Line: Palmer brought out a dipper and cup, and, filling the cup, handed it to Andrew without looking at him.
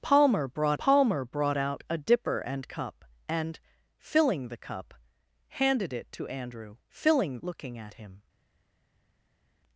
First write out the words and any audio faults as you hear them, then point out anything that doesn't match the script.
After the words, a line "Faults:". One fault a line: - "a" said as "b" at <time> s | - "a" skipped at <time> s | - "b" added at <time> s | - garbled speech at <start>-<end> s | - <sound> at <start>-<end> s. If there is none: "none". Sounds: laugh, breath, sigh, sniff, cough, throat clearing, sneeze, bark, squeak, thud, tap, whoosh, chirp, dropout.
Palmer brought palmer brought out a dipper and cup, and, filling the cup, handed it to Andrew filling looking at him.
Faults:
- "palmer brought" added at 0.8 s
- "without" said as "filling" at 6.9 s